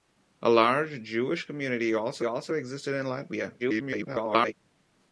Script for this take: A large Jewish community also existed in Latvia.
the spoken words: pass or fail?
fail